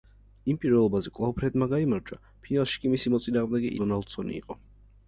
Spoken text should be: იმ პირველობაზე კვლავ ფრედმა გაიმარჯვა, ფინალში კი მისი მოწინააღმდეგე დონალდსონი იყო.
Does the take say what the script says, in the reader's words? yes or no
yes